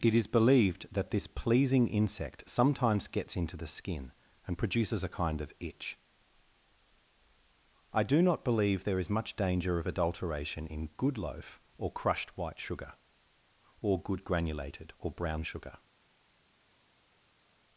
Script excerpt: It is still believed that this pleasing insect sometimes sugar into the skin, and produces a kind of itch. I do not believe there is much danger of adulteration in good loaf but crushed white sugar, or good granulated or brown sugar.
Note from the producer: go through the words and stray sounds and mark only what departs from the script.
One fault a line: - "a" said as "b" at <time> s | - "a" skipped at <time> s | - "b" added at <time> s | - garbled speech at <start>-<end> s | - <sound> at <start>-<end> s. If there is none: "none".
- "still" skipped at 0.2 s
- "sugar" said as "gets" at 3.1 s
- "but" said as "or" at 11.8 s